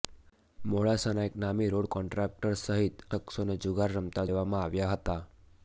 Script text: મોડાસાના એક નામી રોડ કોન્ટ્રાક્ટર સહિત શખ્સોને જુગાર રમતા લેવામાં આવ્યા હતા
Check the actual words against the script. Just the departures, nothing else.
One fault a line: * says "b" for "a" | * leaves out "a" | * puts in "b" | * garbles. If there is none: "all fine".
all fine